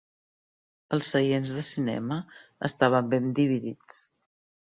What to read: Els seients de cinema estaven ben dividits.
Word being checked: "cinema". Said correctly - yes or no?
yes